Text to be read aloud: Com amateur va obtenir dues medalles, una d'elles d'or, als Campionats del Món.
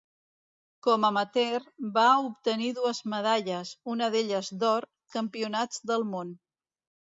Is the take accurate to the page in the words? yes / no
no